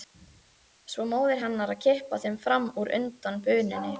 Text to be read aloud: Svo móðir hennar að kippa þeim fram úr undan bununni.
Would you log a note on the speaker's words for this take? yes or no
no